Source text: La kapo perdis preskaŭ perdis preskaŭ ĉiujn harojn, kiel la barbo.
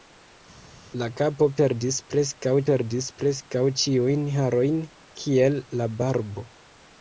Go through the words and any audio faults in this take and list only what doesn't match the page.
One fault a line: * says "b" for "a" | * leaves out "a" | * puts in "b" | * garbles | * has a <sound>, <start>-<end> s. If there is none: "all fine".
all fine